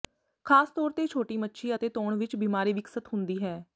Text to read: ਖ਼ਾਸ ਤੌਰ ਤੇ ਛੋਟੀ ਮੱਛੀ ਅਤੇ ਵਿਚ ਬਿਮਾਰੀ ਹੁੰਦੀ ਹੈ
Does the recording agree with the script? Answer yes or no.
no